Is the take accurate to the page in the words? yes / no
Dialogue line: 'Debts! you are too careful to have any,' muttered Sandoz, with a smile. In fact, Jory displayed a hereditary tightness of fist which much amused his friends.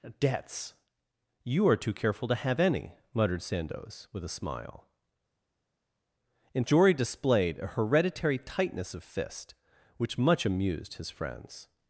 no